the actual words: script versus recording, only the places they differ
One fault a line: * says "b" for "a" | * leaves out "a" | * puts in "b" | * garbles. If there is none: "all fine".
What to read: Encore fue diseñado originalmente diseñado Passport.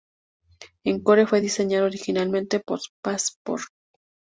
* says "por" for "diseñado"